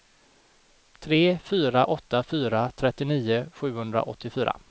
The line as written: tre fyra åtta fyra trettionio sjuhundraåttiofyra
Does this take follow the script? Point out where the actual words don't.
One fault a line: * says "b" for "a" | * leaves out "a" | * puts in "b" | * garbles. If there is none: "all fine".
all fine